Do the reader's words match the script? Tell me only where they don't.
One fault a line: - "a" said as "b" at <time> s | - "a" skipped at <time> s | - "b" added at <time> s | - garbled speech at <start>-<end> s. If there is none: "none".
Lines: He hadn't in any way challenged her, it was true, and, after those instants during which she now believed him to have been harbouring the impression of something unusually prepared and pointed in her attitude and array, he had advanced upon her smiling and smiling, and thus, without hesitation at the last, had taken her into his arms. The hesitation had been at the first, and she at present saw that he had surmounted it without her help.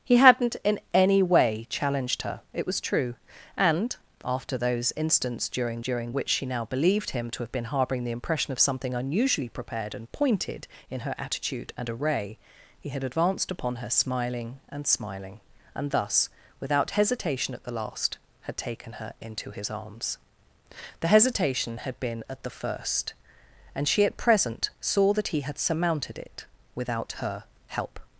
- "during" added at 5.8 s